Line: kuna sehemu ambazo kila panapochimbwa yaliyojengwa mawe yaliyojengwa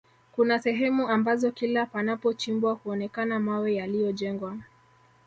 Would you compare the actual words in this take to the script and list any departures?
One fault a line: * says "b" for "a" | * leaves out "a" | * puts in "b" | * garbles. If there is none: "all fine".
* says "huonekana" for "yaliyojengwa"